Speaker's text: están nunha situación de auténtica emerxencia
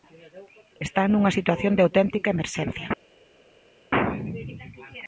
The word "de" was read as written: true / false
true